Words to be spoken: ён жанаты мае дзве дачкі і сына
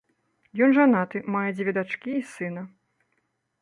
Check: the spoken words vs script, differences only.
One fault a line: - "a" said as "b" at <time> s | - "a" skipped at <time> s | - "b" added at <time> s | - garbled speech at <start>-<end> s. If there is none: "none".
none